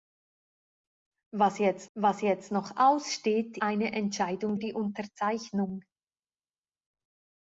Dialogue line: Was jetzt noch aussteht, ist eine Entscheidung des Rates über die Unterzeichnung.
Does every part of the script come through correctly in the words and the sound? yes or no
no